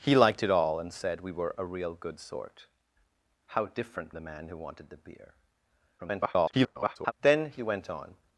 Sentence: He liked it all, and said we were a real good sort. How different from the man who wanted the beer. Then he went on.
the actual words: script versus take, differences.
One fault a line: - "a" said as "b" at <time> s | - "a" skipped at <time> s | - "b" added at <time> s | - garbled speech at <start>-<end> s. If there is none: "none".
- "from" skipped at 4.1 s
- garbled speech at 6.0-7.1 s